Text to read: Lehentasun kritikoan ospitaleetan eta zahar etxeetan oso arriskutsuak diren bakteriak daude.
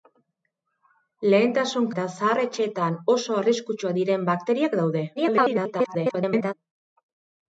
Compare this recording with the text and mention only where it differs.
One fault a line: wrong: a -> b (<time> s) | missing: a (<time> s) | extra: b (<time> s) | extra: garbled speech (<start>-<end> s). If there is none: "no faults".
missing: kritikoan ospitaleetan (1.9 s)
extra: garbled speech (5.2-6.5 s)